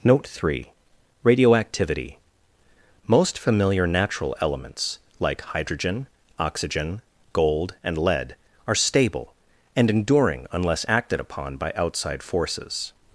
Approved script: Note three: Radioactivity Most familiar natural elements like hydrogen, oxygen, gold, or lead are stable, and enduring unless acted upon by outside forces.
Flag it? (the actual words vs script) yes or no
yes